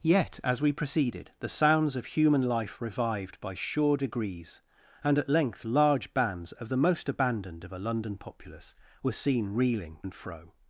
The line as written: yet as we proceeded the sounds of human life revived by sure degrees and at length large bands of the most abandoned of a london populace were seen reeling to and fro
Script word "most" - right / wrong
right